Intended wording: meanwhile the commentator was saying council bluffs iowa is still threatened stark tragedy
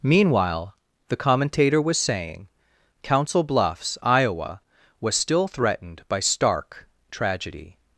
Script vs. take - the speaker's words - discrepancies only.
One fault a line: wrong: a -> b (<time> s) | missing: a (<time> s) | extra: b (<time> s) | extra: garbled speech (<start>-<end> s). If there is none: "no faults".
wrong: is -> was (5.0 s)
extra: by (6.1 s)